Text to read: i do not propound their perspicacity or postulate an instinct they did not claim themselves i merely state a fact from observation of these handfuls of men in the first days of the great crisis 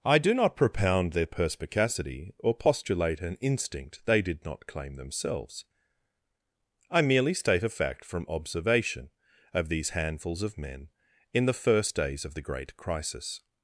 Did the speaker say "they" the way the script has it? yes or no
yes